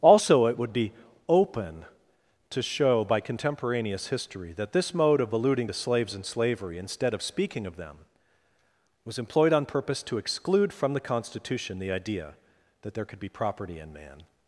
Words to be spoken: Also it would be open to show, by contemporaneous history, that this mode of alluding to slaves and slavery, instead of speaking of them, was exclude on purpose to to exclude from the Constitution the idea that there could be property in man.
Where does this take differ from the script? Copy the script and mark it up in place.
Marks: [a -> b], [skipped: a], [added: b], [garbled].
Also it would be open to show, by contemporaneous history, that this mode of alluding to slaves and slavery, instead of speaking of them, was [exclude -> employed] on purpose to [skipped: to] exclude from the Constitution the idea that there could be property in man.